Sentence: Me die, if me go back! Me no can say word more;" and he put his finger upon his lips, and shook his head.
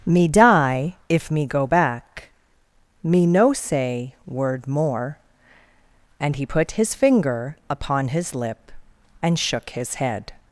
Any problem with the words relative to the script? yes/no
yes